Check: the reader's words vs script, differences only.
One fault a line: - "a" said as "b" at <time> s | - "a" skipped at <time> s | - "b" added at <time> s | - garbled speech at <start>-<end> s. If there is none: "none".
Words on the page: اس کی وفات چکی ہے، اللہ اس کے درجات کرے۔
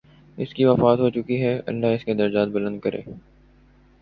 - "ہو" added at 1.0 s
- "بلند" added at 2.5 s